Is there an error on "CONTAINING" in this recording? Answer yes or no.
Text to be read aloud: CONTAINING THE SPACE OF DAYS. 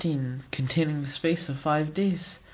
no